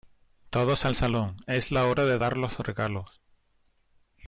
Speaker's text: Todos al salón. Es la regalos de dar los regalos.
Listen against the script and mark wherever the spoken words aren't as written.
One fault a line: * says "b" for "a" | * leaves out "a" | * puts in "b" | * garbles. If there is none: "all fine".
* says "hora" for "regalos"